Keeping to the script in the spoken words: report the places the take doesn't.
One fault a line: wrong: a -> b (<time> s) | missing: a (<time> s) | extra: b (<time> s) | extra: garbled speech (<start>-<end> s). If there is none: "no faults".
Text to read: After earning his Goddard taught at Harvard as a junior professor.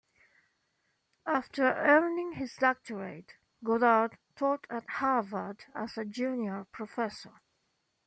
extra: doctorate (2.5 s)